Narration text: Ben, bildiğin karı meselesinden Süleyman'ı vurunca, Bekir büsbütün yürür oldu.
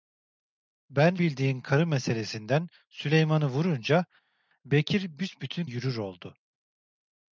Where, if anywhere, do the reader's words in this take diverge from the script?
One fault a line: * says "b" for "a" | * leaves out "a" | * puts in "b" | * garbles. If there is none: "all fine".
all fine